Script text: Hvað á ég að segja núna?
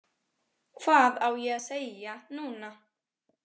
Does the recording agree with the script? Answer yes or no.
yes